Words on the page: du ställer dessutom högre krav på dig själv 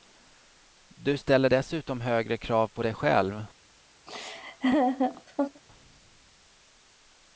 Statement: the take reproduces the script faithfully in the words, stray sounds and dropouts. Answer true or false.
false